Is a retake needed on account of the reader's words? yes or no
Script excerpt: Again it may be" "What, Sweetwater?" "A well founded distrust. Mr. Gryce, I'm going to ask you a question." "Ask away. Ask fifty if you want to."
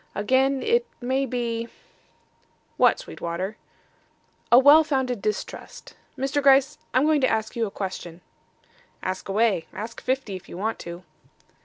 no